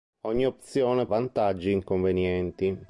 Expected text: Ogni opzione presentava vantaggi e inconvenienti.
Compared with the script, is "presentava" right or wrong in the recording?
wrong